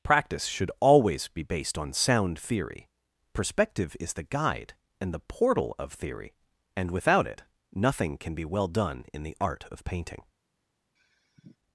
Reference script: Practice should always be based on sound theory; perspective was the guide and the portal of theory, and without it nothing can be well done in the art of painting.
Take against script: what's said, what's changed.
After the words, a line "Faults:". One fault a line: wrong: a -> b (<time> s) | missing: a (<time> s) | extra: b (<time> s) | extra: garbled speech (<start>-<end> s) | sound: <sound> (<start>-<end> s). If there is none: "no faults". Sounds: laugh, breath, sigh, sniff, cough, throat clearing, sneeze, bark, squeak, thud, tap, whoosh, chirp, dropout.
Practice should always be based on sound theory; perspective is the guide and the portal of theory, and without it nothing can be well done in the art of painting.
Faults:
wrong: was -> is (4.0 s)
sound: sigh (11.0-11.6 s)